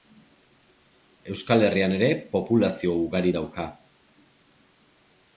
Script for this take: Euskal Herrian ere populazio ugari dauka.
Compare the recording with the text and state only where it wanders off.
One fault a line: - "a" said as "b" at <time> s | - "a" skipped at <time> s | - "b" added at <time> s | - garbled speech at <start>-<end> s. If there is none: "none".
none